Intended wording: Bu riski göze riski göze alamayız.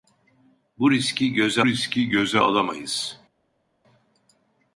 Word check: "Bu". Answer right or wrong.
right